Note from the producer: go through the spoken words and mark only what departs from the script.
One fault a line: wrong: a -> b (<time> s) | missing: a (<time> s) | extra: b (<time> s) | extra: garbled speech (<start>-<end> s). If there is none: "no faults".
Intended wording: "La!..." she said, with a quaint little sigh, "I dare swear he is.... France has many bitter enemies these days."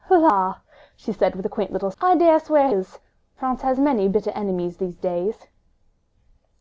missing: sigh (1.9 s)
missing: he (2.7 s)